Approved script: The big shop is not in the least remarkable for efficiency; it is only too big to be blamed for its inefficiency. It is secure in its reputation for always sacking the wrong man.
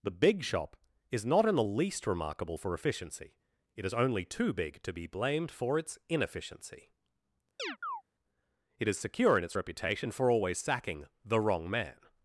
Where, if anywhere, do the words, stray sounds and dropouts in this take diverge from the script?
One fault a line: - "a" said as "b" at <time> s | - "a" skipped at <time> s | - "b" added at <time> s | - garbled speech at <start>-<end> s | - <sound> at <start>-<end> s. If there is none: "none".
- chirp at 7.6-8.0 s